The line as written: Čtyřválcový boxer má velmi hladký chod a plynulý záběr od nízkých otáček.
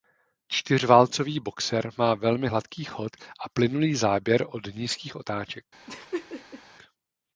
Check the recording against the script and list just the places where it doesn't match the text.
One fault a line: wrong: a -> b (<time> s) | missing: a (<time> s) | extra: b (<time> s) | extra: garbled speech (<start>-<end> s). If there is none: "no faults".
no faults